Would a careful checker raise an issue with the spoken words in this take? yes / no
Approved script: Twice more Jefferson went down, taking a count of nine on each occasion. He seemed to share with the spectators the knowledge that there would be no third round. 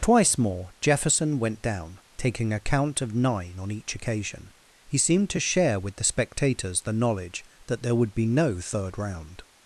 no